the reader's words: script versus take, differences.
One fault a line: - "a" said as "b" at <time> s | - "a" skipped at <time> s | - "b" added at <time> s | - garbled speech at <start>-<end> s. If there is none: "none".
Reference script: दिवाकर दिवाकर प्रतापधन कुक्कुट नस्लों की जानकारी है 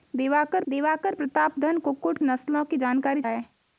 none